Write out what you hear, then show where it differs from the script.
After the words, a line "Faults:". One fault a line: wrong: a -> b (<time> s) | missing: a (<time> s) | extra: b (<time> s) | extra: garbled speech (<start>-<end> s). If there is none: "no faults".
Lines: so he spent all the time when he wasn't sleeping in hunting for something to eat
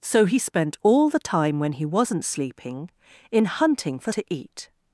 so he spent all the time when he wasn't sleeping in hunting for to eat
Faults:
missing: something (4.1 s)